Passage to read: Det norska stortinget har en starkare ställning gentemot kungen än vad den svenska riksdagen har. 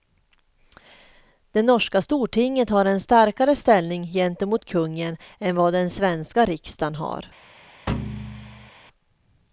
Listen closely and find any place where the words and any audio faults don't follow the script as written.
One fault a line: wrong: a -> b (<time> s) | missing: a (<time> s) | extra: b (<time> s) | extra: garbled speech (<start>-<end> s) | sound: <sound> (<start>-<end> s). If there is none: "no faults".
sound: thud (7.9-8.7 s)